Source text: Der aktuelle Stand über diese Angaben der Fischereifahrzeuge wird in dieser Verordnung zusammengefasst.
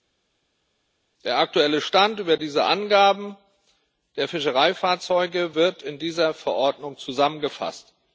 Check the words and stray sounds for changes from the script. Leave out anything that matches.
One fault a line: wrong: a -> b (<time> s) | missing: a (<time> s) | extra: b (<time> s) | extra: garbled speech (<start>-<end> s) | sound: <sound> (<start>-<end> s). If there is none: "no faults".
no faults